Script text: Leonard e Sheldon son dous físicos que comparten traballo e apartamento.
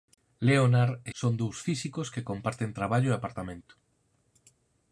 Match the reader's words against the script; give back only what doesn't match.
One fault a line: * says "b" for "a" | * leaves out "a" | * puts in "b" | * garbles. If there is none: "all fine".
* leaves out "Sheldon"